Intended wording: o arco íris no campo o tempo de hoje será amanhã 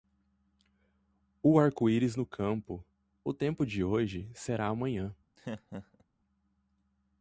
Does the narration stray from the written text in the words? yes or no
no